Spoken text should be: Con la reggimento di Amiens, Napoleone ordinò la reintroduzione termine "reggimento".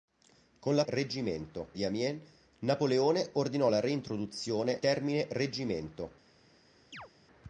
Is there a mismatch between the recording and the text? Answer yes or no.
no